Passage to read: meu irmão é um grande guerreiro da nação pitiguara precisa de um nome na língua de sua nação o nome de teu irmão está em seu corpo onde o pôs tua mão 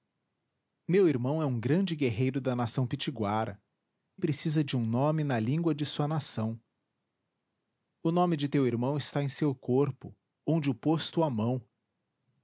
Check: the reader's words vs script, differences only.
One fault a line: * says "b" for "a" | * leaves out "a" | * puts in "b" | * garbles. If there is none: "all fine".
all fine